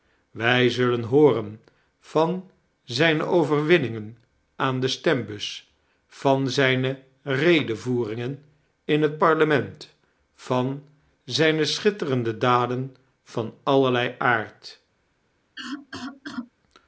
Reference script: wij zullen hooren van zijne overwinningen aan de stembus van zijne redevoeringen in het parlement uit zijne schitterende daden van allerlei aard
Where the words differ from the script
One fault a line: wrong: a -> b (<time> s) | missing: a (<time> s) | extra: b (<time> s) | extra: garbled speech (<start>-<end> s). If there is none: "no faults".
wrong: uit -> van (10.3 s)